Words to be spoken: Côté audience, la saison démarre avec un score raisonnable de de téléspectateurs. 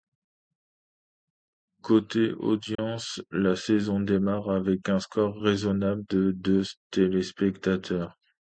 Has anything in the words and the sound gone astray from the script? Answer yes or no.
yes